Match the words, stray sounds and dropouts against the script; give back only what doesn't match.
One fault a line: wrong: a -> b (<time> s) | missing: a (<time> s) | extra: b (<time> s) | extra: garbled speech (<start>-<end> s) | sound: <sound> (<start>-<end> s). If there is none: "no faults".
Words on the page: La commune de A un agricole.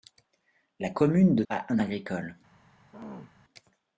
sound: throat clearing (2.9-3.3 s)